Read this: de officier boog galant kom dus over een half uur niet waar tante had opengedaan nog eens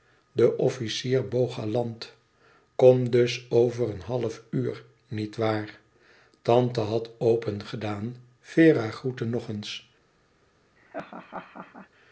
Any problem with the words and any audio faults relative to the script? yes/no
yes